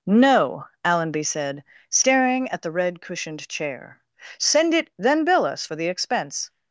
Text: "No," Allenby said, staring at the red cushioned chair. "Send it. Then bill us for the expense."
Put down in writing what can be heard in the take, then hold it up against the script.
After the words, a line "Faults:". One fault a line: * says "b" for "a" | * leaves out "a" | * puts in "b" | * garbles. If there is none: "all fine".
"No," Allenby said, staring at the red cushioned chair. "Send it. Then bill us for the expense."
Faults:
all fine